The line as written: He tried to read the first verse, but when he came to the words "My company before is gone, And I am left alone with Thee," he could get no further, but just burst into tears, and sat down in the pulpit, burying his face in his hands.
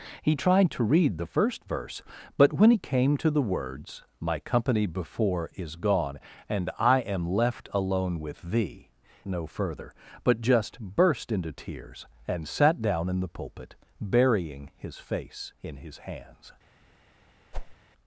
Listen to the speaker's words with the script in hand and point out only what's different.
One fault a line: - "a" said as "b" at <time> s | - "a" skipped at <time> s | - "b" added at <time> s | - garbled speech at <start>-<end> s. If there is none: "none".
- "he could get" skipped at 8.9 s